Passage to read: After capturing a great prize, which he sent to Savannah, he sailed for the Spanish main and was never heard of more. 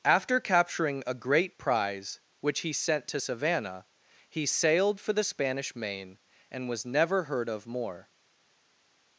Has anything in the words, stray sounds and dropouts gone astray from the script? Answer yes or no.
no